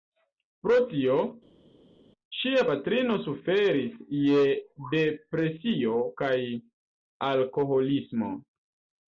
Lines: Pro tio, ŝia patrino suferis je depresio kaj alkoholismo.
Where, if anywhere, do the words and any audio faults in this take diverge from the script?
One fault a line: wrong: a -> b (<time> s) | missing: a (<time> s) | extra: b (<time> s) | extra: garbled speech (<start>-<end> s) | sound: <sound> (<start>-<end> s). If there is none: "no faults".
no faults